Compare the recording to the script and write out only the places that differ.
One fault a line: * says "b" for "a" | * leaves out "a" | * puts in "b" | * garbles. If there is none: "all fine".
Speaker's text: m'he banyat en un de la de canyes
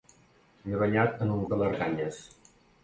all fine